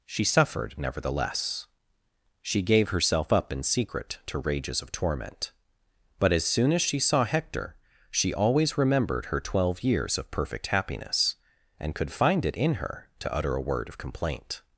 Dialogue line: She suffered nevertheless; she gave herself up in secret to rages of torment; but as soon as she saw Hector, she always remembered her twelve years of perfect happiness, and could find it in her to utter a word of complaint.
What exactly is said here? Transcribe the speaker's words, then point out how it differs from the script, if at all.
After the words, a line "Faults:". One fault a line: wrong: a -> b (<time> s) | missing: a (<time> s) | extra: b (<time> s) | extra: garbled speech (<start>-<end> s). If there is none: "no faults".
She suffered nevertheless; she gave herself up in secret to rages of torment; but as soon as she saw Hector, she always remembered her twelve years of perfect happiness, and could find it in her to utter a word of complaint.
Faults:
no faults